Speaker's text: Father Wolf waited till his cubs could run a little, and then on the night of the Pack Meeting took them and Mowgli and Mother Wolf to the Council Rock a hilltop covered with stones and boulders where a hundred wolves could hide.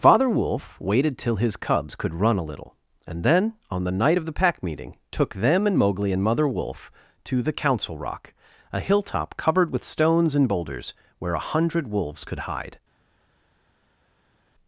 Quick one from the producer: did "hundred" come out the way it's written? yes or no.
yes